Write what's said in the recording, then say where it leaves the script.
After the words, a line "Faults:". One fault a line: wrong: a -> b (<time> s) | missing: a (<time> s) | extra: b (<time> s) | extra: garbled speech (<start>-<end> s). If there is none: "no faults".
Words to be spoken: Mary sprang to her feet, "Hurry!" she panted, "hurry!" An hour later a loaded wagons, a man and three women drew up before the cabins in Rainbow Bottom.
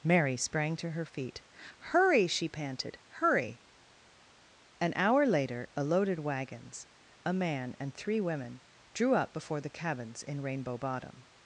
Mary sprang to her feet, "Hurry!" she panted, "hurry!" An hour later a loaded wagons, a man and three women drew up before the cabins in Rainbow Bottom.
Faults:
no faults